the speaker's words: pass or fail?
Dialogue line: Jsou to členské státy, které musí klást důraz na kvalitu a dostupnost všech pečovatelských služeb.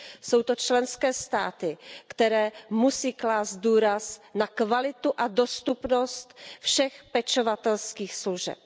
pass